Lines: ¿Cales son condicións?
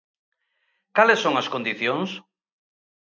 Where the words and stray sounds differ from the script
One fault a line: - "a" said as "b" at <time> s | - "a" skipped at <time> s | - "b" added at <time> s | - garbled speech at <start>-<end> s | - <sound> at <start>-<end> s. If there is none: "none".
- "as" added at 1.4 s